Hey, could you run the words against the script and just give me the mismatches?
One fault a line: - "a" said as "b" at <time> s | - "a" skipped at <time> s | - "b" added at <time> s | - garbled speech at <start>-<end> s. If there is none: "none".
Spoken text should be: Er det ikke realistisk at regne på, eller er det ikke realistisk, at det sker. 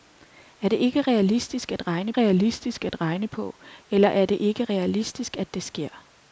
- "realistisk at regne" added at 2.1 s